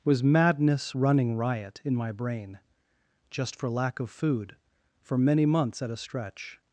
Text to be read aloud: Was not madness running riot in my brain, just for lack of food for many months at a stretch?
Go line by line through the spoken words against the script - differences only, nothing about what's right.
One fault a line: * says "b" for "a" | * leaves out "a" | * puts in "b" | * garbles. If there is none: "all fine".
* leaves out "not"